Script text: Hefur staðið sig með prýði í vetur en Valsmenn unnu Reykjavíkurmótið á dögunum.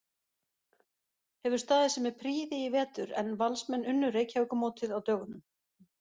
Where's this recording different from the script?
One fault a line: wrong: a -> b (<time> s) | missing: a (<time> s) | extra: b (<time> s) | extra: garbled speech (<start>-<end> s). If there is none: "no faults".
no faults